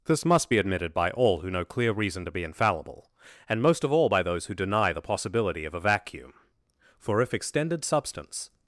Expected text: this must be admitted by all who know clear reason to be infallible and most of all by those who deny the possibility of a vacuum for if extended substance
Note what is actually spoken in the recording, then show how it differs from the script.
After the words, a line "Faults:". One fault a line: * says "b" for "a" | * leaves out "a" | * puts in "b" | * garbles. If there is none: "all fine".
this must be admitted by all who know clear reason to be infallible and most of all by those who deny the possibility of a vacuum for if extended substance
Faults:
all fine